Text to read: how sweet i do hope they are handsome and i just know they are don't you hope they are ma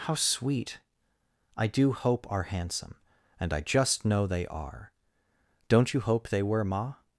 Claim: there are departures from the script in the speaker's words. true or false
true